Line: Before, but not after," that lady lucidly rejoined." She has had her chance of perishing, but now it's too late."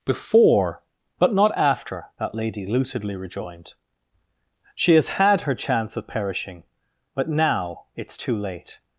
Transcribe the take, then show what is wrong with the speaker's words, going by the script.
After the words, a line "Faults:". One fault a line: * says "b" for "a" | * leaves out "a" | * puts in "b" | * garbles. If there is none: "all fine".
Before, but not after," that lady lucidly rejoined." She has had her chance of perishing, but now it's too late."
Faults:
all fine